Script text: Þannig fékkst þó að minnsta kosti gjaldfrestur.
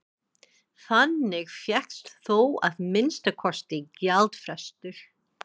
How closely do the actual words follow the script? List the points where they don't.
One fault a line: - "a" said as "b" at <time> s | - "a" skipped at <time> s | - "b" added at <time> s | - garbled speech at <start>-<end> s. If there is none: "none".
none